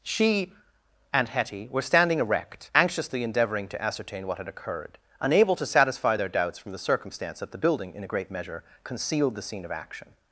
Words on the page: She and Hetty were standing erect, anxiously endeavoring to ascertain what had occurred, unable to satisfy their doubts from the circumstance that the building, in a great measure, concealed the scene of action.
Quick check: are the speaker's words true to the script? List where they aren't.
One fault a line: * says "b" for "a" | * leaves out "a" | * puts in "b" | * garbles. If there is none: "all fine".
all fine